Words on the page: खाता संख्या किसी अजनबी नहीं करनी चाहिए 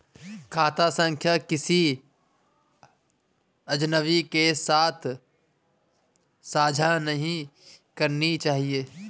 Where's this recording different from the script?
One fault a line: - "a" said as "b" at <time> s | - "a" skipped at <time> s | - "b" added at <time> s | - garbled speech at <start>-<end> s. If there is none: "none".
- "के साथ साझा" added at 4.2 s